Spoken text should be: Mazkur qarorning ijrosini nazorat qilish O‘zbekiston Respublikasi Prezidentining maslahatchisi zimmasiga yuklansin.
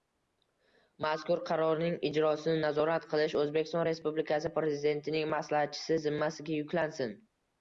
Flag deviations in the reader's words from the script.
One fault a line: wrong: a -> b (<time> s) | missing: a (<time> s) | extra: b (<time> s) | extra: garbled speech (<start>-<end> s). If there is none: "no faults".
no faults